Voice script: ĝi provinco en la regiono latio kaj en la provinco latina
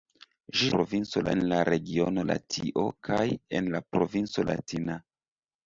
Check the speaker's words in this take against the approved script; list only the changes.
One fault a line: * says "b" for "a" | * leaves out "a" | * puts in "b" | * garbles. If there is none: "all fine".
all fine